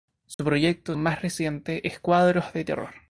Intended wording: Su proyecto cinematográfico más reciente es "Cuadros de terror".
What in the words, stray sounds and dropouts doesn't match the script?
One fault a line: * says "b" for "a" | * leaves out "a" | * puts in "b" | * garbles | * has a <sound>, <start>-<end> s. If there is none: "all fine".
* has a dropout, 0.3-0.4 s
* leaves out "cinematográfico"